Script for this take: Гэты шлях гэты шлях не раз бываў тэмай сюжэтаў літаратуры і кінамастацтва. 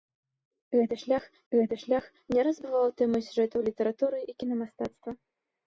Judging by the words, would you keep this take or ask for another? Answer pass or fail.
pass